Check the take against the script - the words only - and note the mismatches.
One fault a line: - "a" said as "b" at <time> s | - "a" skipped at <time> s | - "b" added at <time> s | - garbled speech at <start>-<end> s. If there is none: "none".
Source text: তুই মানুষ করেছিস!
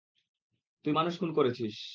- "খুন" added at 1.2 s